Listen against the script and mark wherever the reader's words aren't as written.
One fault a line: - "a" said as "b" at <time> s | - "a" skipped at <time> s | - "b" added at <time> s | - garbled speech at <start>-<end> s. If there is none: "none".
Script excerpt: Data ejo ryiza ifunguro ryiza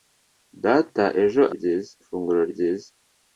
none